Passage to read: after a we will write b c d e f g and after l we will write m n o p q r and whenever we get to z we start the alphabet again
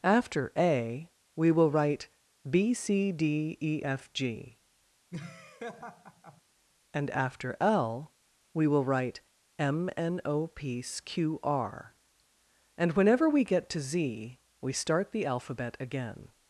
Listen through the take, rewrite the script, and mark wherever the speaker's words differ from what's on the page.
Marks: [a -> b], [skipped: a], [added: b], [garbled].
after a we will write b c d e f g and after l we will write m n o p q r and whenever we get to z we start the alphabet again